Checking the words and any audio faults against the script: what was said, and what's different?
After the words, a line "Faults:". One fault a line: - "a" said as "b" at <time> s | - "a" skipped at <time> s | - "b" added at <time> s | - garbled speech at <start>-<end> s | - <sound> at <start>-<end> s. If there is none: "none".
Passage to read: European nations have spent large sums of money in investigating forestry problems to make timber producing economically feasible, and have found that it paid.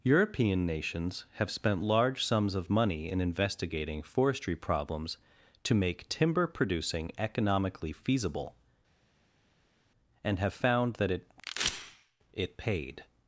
European nations have spent large sums of money in investigating forestry problems to make timber producing economically feasible, and have found that it it paid.
Faults:
- "it" added at 12.3 s